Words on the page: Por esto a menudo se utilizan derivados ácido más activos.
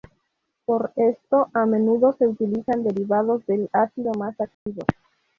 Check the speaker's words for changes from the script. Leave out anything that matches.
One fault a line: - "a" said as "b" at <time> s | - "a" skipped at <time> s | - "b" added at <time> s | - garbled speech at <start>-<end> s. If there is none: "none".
- "del" added at 3.5 s